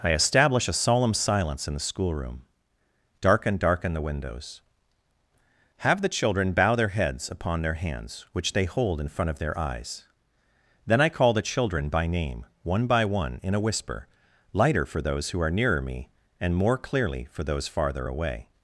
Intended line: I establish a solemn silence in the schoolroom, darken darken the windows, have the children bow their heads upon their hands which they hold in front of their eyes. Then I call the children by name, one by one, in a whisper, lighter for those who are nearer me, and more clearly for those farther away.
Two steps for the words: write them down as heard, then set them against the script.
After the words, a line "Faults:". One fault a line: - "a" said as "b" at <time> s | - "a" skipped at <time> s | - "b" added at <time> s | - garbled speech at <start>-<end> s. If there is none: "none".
I establish a solemn silence in the schoolroom, darken darken the windows, have the children bow their heads upon their hands which they hold in front of their eyes. Then I call the children by name, one by one, in a whisper, lighter for those who are nearer me, and more clearly for those farther away.
Faults:
none